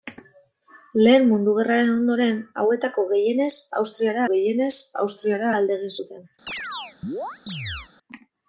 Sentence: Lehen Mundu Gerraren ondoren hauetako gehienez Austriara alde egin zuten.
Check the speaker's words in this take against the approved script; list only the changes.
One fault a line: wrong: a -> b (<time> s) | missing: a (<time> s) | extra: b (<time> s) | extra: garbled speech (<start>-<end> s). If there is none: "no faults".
extra: gehienez Austriara (4.3 s)